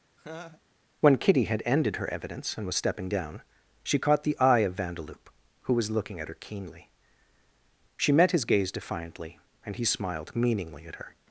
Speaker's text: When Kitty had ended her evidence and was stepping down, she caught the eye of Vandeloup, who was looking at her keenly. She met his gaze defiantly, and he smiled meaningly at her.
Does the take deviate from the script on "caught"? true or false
false